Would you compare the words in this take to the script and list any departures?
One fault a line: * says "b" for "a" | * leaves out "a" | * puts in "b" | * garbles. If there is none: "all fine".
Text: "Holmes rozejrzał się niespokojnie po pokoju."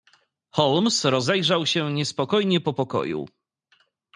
all fine